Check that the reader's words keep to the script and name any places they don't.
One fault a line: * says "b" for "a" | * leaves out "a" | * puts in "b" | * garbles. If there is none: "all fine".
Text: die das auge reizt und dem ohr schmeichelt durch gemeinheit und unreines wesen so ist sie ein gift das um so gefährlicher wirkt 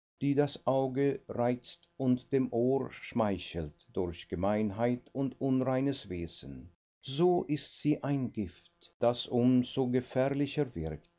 all fine